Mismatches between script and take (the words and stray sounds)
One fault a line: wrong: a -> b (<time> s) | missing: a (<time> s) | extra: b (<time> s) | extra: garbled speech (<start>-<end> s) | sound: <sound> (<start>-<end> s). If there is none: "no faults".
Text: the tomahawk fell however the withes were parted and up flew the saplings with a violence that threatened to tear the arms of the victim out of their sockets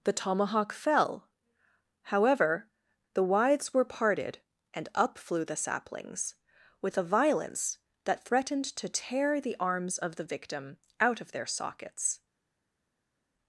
no faults